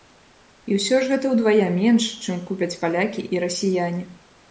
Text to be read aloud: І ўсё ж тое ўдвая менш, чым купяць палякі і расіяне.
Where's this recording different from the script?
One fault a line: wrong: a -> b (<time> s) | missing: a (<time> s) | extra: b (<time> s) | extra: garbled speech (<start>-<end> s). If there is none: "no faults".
wrong: тое -> гэта (1.1 s)